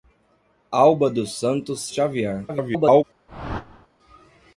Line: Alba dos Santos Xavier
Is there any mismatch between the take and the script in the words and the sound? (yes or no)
yes